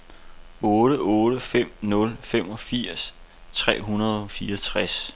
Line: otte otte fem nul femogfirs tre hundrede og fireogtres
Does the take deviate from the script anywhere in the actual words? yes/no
no